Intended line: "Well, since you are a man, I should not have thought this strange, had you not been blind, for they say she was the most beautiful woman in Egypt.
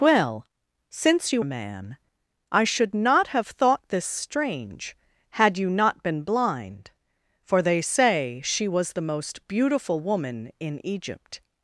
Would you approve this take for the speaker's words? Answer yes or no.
no